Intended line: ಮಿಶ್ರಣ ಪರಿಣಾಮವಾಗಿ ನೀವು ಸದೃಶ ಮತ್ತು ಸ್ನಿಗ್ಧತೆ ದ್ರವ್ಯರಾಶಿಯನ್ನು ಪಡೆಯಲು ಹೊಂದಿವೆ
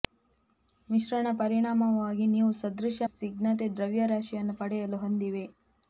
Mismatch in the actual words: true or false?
true